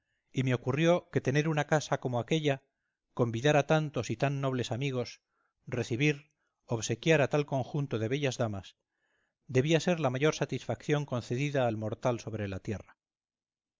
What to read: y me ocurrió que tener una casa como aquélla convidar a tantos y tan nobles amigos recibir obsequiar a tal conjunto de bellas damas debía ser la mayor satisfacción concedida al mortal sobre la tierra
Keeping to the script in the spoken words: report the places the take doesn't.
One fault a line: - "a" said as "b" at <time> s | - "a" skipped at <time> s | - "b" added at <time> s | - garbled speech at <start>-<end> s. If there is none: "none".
none